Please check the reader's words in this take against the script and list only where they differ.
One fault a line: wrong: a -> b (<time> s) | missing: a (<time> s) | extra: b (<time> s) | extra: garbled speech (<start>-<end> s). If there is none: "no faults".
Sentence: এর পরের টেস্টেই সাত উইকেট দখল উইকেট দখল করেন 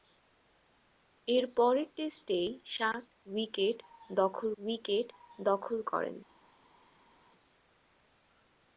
no faults